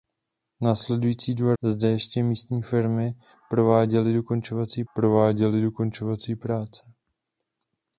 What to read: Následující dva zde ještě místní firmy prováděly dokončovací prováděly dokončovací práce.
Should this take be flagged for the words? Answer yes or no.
no